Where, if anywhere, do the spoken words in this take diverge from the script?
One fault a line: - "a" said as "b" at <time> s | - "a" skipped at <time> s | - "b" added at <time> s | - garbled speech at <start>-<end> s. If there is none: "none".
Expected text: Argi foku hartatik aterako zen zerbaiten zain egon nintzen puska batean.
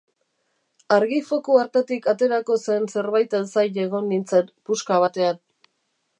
none